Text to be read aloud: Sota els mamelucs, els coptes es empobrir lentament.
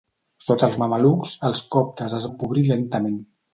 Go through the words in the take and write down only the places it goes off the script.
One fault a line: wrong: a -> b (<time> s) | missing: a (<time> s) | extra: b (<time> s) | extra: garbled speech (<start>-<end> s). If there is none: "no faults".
no faults